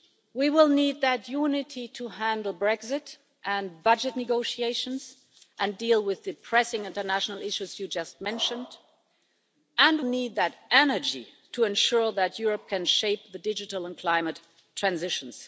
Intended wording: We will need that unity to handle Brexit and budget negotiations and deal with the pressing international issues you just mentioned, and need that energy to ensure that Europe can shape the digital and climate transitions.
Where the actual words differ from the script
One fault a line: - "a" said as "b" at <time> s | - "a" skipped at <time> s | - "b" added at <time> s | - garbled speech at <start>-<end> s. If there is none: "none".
none